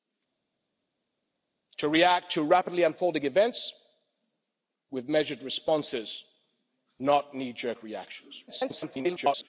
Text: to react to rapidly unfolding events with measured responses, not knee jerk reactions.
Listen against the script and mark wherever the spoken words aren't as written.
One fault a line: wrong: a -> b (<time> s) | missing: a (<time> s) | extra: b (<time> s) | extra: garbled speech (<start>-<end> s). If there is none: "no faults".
extra: garbled speech (8.5-9.5 s)